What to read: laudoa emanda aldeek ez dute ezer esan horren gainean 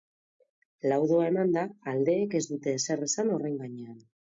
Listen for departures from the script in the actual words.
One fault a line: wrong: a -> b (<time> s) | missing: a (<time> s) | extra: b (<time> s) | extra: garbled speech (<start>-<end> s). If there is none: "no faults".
no faults